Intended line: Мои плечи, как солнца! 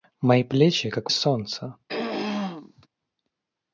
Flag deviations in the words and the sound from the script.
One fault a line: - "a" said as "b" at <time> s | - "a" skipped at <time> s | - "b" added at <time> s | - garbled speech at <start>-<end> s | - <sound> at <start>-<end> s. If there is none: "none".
- throat clearing at 1.9-2.9 s